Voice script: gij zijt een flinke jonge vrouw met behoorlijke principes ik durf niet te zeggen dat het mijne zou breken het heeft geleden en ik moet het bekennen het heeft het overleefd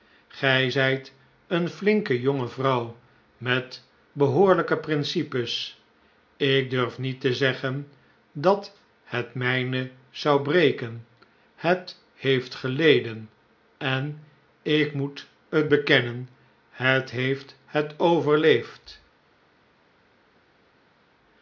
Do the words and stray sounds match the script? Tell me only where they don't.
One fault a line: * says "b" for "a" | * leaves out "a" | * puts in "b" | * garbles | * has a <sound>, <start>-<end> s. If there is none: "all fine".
all fine